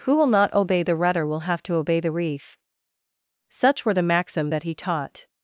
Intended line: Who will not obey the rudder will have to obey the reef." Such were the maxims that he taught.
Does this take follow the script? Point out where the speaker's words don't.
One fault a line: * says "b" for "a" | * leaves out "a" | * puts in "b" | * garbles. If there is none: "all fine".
* says "maxim" for "maxims"